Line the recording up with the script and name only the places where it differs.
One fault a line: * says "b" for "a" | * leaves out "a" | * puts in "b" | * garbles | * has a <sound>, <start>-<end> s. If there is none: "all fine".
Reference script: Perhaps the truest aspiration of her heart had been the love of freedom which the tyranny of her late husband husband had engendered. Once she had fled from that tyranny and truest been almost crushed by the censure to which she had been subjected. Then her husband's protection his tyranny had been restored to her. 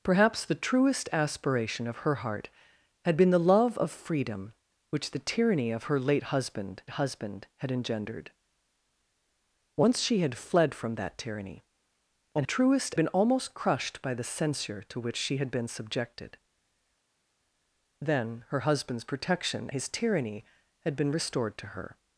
all fine